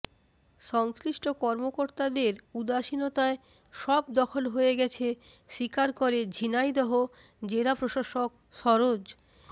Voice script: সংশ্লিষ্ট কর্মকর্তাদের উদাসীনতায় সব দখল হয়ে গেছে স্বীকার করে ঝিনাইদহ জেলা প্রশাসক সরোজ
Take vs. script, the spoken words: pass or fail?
pass